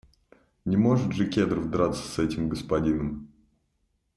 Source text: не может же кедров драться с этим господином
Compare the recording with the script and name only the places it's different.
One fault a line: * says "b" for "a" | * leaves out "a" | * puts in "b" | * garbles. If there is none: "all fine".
all fine